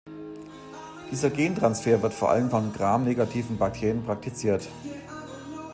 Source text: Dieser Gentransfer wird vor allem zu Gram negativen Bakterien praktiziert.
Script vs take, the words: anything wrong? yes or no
yes